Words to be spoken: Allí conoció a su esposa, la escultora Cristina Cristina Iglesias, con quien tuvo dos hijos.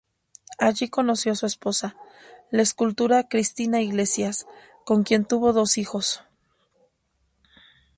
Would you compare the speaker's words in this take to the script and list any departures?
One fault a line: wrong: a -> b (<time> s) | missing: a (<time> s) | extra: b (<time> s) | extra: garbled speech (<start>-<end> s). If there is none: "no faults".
missing: Cristina (3.8 s)